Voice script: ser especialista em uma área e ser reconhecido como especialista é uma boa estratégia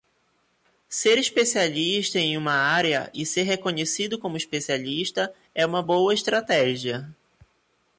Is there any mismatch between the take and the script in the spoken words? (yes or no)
no